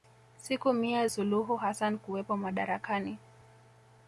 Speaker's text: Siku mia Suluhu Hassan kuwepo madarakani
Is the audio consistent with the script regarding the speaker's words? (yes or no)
yes